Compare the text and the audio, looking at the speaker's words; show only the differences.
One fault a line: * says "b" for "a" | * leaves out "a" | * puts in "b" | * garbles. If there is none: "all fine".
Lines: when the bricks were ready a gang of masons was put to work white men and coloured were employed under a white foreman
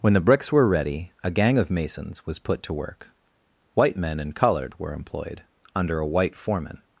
all fine